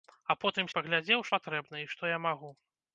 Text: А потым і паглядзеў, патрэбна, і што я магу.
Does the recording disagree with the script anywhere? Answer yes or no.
no